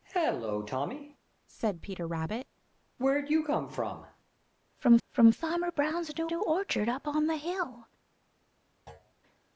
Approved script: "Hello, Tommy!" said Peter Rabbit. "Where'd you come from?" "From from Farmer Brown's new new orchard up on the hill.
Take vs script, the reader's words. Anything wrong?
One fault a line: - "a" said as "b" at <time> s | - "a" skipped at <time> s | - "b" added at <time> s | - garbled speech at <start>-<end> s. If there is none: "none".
none